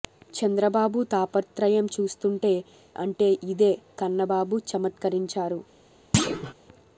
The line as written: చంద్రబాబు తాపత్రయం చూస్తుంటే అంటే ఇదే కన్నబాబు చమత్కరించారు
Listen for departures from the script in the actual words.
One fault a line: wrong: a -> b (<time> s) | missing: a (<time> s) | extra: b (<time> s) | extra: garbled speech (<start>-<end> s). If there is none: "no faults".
no faults